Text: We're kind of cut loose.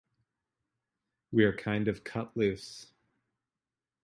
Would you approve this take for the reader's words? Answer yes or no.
yes